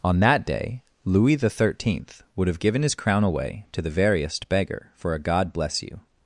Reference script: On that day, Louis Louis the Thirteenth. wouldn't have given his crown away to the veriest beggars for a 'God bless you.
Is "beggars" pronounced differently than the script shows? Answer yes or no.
yes